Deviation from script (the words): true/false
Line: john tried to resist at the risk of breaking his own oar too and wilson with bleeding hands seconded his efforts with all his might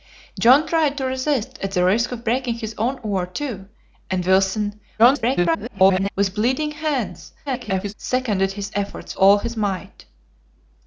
true